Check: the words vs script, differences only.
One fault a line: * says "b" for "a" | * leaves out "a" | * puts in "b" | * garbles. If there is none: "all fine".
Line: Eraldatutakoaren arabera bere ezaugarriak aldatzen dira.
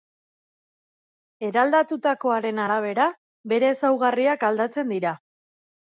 all fine